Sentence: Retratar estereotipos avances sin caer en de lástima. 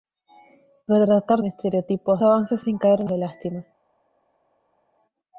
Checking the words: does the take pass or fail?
pass